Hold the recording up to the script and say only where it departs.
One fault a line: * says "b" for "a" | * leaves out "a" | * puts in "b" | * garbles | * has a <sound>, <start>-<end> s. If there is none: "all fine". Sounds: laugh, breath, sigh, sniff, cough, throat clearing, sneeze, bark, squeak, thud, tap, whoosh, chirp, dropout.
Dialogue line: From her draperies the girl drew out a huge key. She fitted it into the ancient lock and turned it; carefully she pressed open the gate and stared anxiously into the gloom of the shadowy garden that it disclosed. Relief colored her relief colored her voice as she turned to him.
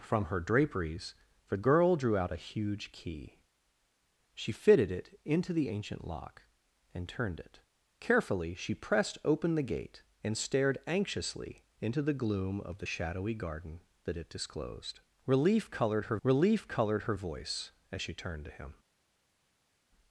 all fine